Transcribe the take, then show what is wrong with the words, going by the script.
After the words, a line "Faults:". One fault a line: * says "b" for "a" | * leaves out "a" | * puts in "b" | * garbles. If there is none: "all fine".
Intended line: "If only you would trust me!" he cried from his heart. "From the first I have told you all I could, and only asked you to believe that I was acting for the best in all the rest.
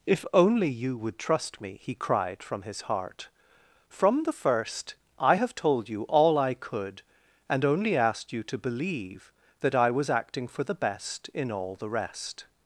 "If only you would trust me!" he cried from his heart. "From the first I have told you all I could, and only asked you to believe that I was acting for the best in all the rest.
Faults:
all fine